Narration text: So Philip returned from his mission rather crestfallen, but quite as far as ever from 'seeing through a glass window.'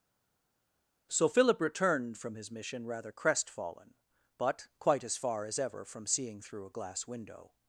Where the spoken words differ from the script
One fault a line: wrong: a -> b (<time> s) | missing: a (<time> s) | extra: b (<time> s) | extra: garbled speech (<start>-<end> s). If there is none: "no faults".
no faults